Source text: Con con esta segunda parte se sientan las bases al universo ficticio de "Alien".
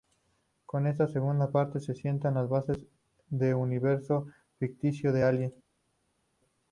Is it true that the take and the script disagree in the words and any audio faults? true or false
true